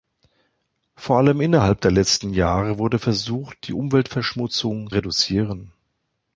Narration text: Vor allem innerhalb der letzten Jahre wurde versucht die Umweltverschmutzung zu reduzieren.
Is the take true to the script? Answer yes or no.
no